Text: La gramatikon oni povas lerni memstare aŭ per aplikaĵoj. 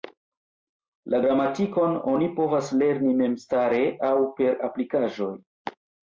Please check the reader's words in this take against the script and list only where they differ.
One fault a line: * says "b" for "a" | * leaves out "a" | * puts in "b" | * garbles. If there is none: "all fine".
all fine